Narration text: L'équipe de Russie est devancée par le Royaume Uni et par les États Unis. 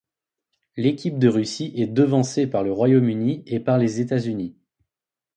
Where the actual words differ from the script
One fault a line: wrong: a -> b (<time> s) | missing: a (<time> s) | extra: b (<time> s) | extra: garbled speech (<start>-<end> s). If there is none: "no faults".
no faults